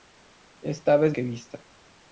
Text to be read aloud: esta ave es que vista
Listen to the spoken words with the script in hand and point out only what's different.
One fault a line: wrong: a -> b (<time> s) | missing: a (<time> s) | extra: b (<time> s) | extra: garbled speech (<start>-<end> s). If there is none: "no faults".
no faults